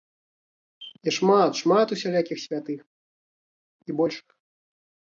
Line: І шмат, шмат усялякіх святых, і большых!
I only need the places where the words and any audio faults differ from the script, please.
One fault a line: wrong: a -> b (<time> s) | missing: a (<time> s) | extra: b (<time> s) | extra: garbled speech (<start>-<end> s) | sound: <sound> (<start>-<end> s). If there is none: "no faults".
no faults